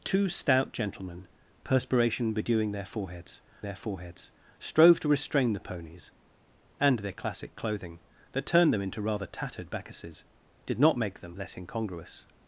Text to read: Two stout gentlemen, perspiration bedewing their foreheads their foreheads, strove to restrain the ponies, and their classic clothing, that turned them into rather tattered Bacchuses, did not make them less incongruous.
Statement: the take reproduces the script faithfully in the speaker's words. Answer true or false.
true